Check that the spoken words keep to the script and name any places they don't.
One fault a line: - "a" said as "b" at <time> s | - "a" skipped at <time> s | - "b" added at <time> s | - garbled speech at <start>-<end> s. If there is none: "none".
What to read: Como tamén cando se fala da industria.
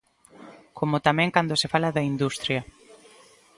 none